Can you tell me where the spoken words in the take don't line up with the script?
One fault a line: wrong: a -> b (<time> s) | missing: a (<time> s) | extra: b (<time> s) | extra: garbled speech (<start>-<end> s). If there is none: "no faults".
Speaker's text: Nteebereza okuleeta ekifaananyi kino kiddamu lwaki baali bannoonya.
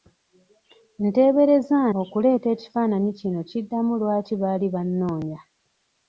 no faults